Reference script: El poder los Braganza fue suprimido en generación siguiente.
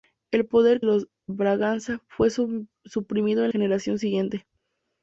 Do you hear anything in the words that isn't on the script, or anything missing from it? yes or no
no